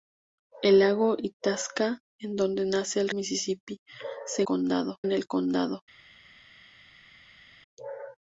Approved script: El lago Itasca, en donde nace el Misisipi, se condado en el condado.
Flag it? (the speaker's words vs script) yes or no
no